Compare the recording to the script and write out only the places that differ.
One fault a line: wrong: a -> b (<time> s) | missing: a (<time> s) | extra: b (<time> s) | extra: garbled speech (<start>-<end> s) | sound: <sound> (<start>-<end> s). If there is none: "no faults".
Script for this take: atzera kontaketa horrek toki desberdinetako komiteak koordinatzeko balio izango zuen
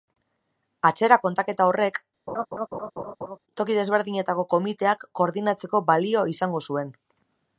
sound: laugh (2.3-3.4 s)